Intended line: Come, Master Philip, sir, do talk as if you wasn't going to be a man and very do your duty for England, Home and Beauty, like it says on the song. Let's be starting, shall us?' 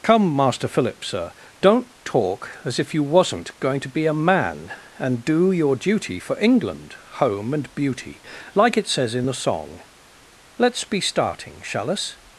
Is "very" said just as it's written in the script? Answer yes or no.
no